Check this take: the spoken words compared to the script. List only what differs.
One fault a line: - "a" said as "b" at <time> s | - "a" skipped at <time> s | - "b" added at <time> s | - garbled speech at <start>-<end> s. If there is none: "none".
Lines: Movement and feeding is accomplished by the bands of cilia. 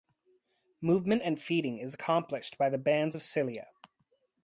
none